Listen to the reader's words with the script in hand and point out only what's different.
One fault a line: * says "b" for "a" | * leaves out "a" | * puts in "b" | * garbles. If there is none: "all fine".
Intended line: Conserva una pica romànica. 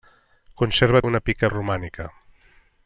all fine